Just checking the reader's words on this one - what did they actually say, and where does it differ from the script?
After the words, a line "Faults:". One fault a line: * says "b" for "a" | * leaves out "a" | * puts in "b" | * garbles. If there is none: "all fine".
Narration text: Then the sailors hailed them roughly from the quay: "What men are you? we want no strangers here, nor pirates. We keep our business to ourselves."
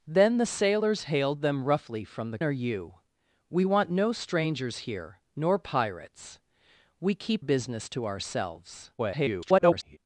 Then the sailors hailed them roughly from the are you? we want no strangers here, nor pirates. We keep business to ourselves." [garbled]
Faults:
* leaves out "quay What men"
* leaves out "our"
* garbles